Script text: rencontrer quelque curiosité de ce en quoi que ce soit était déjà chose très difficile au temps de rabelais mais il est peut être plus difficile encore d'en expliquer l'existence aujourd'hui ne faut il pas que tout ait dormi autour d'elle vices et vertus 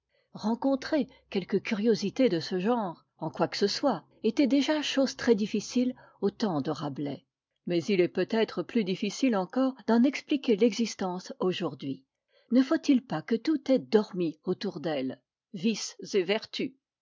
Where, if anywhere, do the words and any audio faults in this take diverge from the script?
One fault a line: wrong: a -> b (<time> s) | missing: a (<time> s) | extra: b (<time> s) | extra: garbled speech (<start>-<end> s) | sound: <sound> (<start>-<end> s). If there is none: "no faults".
extra: genre (2.6 s)